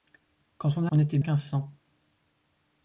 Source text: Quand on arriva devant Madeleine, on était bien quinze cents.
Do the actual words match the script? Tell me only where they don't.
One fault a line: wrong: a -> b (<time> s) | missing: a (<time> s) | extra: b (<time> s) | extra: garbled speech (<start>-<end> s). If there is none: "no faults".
missing: arriva devant Madeleine (0.8 s)
missing: bien (1.2 s)